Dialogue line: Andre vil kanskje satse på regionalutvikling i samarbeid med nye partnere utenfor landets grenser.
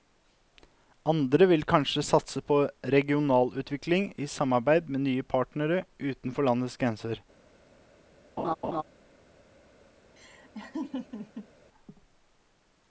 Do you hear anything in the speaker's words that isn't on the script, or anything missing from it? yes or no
no